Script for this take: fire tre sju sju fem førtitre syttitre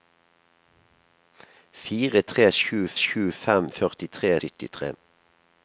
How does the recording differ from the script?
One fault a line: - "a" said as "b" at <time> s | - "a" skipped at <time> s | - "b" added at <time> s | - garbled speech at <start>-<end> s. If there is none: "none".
none